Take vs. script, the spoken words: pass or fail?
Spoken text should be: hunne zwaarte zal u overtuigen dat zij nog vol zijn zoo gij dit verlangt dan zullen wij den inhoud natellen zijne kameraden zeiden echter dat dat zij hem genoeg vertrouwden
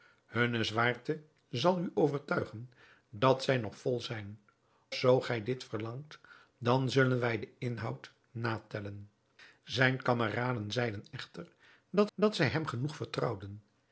pass